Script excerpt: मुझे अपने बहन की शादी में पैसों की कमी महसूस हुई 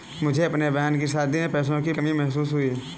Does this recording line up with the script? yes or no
yes